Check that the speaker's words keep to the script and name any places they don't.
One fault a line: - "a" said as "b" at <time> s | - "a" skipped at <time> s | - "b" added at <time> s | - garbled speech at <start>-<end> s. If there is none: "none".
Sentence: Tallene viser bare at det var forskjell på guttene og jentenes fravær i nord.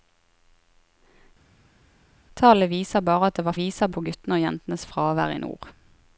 - "forskjell" said as "viser" at 3.6 s